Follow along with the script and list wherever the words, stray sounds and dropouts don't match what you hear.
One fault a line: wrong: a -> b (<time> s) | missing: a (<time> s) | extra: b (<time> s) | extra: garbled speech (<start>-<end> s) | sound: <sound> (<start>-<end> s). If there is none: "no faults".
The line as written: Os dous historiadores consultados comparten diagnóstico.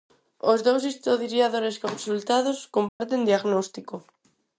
sound: dropout (2.9-3.0 s)